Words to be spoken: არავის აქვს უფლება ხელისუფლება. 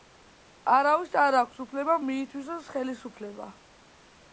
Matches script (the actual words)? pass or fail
fail